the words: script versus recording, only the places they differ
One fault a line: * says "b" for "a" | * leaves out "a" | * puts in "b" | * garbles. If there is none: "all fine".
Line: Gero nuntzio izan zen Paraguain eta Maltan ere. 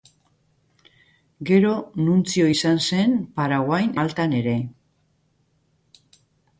* leaves out "eta"